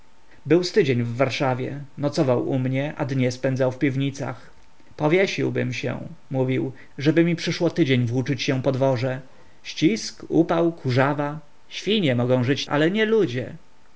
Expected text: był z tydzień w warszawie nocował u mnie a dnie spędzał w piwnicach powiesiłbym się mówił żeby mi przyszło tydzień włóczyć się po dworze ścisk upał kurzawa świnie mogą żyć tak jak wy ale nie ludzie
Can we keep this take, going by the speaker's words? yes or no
no